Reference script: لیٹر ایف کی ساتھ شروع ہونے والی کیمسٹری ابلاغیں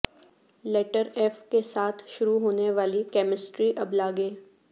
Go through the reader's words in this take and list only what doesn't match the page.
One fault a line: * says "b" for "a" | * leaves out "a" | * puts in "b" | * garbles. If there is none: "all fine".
* says "کے" for "کی"